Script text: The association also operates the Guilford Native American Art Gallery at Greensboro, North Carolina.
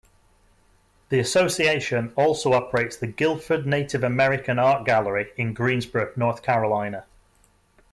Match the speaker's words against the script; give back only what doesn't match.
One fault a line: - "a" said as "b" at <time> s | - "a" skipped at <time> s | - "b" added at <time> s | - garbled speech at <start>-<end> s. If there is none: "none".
- "at" said as "in" at 5.4 s